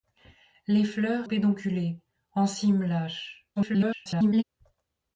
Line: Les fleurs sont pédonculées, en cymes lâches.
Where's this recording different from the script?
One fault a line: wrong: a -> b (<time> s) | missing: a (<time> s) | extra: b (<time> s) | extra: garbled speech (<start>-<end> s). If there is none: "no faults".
missing: sont (1.3 s)
extra: garbled speech (3.6-4.4 s)